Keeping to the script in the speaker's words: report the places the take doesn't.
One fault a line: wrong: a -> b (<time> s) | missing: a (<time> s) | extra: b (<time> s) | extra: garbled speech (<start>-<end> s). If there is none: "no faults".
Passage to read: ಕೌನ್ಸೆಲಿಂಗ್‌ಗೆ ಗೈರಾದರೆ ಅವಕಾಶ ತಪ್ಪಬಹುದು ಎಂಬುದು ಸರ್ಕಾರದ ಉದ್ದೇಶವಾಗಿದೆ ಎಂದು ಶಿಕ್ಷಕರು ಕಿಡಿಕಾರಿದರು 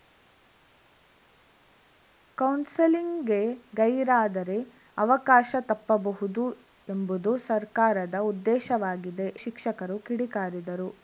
missing: ಎಂದು (9.3 s)